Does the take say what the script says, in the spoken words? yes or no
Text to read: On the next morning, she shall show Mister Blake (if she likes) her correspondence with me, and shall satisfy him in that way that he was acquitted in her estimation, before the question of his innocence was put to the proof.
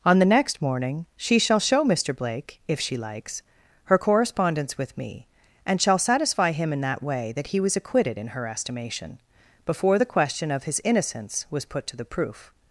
yes